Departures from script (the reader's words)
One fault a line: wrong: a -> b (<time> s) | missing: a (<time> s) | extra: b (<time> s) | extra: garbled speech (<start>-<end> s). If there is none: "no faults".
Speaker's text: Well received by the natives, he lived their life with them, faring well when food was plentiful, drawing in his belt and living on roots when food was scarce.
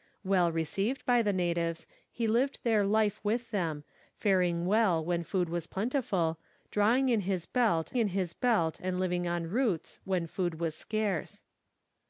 extra: in his belt (8.0 s)